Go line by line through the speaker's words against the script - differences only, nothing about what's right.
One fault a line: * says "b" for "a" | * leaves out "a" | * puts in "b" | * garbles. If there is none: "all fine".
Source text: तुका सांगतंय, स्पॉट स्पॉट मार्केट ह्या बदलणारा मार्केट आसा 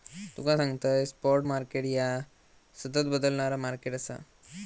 * leaves out "स्पॉट"
* puts in "सतत"